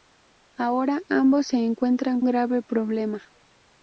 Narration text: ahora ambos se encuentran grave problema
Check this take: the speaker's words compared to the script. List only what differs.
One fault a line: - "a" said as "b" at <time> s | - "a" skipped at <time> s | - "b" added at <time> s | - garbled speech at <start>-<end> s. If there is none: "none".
none